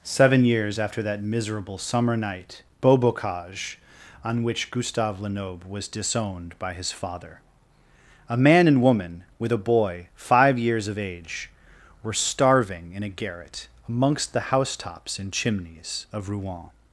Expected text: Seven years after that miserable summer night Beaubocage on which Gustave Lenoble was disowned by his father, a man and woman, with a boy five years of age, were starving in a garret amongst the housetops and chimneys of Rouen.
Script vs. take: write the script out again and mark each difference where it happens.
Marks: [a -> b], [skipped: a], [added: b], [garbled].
Seven years after that miserable summer night Beaubocage on which Gustave Lenoble was disowned by his father, a man and woman, with a boy five years of age, were starving in a garret amongst the housetops and chimneys of Rouen.